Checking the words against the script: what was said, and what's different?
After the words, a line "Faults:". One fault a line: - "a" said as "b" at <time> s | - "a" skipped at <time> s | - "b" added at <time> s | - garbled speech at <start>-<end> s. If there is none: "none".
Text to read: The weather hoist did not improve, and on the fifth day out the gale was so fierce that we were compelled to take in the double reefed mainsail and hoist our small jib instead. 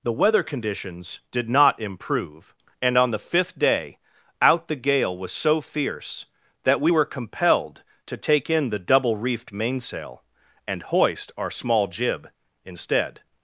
The weather conditions did not improve, and on the fifth day out the gale was so fierce that we were compelled to take in the double reefed mainsail and hoist our small jib instead.
Faults:
- "hoist" said as "conditions" at 0.4 s